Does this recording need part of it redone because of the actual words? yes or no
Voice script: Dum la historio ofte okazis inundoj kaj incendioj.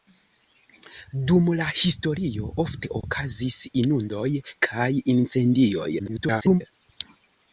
yes